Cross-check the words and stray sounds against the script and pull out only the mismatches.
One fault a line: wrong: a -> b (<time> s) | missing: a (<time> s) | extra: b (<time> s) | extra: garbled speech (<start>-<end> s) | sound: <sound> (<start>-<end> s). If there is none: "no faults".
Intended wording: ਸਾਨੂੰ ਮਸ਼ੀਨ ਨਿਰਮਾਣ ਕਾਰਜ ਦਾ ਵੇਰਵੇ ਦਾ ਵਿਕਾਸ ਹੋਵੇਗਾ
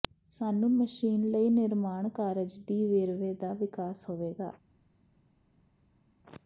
extra: ਲਈ (1.2 s)
wrong: ਦਾ -> ਦੀ (2.7 s)